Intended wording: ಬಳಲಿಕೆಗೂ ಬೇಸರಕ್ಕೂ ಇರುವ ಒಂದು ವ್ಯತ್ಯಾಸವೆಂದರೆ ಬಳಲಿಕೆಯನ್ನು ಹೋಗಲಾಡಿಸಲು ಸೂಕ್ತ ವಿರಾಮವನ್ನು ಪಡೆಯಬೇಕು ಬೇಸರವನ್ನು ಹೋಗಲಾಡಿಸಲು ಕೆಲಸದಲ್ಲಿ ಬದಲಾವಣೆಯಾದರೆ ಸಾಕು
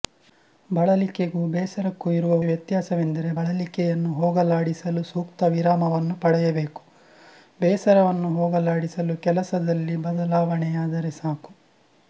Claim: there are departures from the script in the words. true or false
true